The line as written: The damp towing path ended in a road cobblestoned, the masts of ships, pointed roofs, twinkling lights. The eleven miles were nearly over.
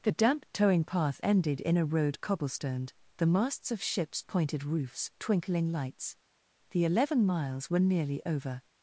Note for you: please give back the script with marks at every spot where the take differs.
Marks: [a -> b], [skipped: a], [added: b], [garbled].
The damp towing path ended in a road cobblestoned, the masts of ships, pointed roofs, twinkling lights. The eleven miles were nearly over.